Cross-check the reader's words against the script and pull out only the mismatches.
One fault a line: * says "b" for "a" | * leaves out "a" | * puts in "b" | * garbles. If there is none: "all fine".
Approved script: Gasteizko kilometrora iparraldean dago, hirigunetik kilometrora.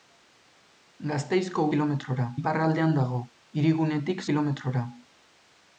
all fine